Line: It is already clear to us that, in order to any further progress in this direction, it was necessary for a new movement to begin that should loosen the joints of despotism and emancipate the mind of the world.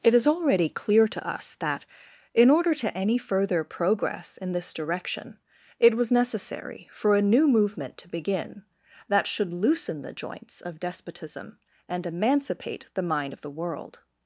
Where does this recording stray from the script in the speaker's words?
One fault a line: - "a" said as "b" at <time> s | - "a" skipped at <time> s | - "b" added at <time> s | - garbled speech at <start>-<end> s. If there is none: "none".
none